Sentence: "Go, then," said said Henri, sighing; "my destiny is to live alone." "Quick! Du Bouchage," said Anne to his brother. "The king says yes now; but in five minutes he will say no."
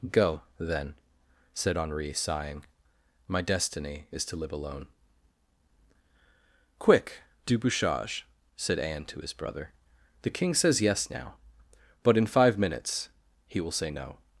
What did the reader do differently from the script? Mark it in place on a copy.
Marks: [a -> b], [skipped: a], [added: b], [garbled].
"Go, then," said [skipped: said] Henri, sighing; "my destiny is to live alone." "Quick! Du Bouchage," said Anne to his brother. "The king says yes now; but in five minutes he will say no."